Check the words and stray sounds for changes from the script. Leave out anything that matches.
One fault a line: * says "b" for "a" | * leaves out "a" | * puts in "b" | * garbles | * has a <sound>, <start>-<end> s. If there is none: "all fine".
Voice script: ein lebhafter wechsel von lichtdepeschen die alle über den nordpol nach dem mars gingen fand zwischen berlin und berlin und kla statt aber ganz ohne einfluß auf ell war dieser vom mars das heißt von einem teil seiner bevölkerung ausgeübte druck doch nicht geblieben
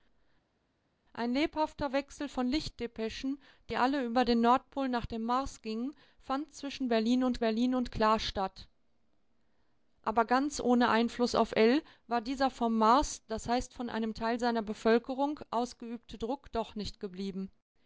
all fine